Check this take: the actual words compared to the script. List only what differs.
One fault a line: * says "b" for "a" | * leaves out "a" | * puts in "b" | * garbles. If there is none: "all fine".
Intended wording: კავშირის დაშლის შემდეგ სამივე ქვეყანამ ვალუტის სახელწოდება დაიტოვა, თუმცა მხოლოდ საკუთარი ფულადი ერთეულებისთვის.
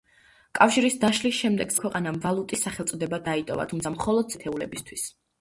* leaves out "სამივე"
* leaves out "საკუთარი ფულადი"